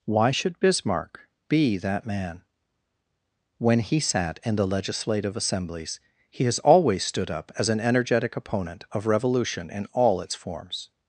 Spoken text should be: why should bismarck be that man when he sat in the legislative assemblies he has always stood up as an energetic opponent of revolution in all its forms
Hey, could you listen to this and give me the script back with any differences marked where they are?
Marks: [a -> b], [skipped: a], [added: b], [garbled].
why should bismarck be that man when he sat in the legislative assemblies he has always stood up as an energetic opponent of revolution in all its forms